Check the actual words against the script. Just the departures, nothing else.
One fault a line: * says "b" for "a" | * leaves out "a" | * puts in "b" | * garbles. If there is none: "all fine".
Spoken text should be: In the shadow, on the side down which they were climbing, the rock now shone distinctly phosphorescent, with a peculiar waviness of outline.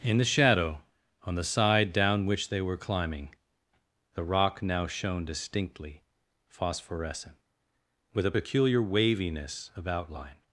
all fine